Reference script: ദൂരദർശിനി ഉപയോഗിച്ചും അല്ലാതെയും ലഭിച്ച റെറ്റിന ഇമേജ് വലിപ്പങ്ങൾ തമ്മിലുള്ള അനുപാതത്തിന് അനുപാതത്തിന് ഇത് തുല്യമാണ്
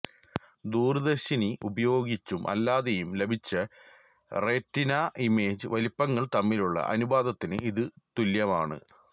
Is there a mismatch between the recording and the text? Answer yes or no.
yes